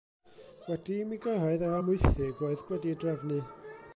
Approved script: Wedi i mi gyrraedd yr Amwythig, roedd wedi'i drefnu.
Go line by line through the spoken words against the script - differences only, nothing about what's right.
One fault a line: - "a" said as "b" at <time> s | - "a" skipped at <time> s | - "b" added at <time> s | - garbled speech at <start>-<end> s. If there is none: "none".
none